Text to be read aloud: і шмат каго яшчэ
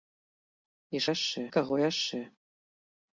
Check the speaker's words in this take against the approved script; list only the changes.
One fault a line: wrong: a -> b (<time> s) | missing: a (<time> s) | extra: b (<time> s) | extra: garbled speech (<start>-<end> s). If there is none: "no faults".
wrong: шмат -> яшчэ (1.1 s)